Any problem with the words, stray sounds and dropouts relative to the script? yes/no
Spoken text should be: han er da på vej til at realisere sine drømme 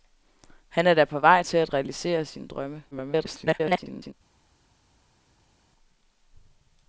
yes